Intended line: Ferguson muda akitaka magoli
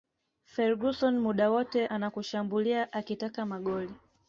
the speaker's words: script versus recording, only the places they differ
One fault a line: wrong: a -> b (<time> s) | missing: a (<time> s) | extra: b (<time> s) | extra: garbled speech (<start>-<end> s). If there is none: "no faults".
extra: wote anakushambulia (1.5 s)